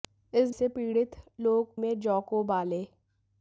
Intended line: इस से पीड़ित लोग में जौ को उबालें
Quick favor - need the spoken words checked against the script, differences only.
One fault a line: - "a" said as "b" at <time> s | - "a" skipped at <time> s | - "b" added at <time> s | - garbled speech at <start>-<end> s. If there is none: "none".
none